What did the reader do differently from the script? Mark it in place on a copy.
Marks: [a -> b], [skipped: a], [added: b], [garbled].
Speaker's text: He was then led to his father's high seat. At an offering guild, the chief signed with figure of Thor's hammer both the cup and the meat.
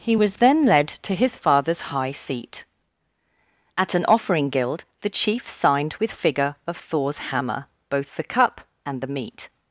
He was then led to his father's high seat. At an offering guild, the chief signed with figure of Thor's hammer both the cup and the meat.